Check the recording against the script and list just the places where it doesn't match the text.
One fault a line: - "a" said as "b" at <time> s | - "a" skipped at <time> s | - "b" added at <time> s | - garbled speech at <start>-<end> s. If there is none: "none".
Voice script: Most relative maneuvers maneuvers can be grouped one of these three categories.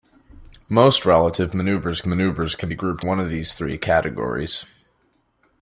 none